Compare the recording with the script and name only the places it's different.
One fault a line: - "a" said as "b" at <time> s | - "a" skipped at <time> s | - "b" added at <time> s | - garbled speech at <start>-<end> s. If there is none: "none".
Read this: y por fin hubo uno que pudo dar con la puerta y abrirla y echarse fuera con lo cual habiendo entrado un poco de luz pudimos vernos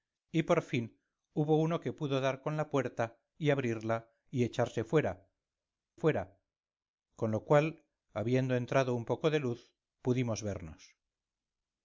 - "fuera" added at 6.0 s